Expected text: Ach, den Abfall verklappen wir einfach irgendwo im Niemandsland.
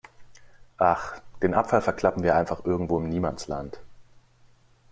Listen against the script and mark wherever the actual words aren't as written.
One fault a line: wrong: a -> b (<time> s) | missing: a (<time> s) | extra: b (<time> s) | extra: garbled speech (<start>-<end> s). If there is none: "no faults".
no faults